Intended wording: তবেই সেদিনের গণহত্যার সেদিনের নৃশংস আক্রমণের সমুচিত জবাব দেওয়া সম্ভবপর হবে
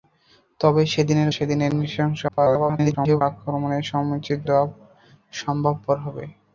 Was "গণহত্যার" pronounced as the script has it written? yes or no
no